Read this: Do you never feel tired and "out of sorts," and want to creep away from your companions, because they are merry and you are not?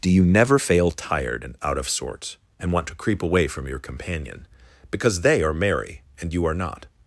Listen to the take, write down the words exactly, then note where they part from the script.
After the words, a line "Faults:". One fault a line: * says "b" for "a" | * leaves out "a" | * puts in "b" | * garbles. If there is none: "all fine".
Do you never fail tired and "out of sorts," and want to creep away from your companion, because they are merry and you are not?
Faults:
* says "fail" for "feel"
* says "companion" for "companions"